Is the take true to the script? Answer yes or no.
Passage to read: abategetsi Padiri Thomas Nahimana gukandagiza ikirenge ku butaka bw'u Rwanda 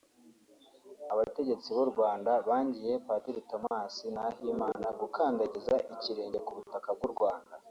no